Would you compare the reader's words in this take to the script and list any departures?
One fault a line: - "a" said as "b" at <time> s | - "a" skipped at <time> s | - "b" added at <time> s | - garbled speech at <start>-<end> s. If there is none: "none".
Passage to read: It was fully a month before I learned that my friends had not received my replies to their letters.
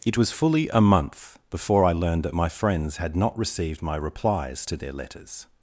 none